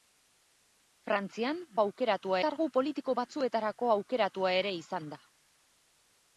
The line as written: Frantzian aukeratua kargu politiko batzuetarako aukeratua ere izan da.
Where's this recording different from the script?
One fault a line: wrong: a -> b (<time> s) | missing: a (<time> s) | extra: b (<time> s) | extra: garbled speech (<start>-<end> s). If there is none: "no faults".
no faults